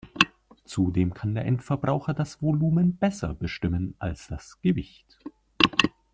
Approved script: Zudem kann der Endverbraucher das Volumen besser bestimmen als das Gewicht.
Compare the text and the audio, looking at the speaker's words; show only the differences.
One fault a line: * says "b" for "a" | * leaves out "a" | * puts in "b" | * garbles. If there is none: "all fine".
all fine